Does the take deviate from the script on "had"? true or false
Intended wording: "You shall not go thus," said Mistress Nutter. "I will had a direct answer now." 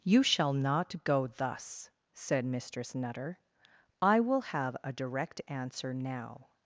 true